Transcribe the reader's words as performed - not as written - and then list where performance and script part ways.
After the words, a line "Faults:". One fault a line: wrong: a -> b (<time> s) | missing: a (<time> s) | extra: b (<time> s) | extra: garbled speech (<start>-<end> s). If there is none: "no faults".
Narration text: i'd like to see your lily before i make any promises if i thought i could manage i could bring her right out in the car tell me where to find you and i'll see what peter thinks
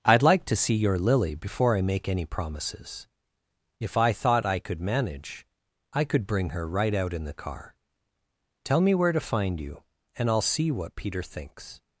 i'd like to see your lily before i make any promises if i thought i could manage i could bring her right out in the car tell me where to find you and i'll see what peter thinks
Faults:
no faults